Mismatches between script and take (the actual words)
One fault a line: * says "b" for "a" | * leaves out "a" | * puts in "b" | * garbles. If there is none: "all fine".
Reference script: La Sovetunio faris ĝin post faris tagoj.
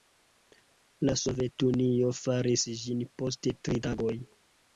* says "tri" for "faris"